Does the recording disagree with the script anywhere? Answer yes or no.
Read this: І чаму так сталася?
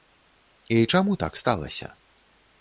no